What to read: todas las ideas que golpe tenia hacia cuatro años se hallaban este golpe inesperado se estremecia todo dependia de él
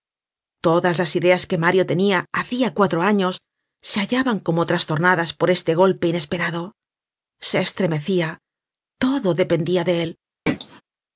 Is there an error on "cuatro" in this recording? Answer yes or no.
no